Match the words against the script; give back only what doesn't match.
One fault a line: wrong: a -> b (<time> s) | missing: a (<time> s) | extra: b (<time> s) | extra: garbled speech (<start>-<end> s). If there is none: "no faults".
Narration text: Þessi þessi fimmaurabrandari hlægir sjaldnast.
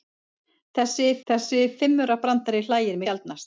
no faults